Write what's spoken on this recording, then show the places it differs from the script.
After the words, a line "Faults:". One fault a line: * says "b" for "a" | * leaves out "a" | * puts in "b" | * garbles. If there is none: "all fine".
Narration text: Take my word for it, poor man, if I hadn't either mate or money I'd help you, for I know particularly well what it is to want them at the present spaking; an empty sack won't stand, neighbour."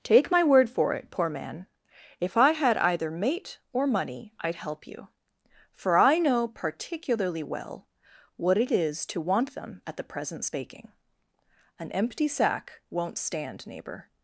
Take my word for it, poor man, if I had either mate or money I'd help you, for I know particularly well what it is to want them at the present spaking; an empty sack won't stand, neighbour."
Faults:
* says "had" for "hadn't"